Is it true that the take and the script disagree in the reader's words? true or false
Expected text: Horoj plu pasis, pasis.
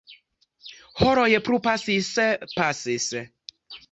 false